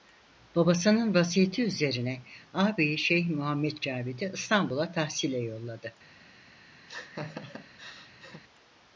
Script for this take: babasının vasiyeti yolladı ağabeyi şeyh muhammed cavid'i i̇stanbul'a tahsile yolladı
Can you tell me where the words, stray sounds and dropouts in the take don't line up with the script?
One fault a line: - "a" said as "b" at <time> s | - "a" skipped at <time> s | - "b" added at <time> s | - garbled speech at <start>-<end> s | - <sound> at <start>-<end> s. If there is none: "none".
- "yolladı" said as "üzerine" at 1.6 s
- laugh at 6.9-8.4 s